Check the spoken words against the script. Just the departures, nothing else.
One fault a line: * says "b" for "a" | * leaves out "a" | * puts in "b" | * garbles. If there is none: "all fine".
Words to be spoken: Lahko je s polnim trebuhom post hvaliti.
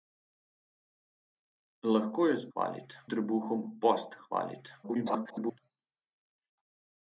* says "hvaliti" for "polnim"
* garbles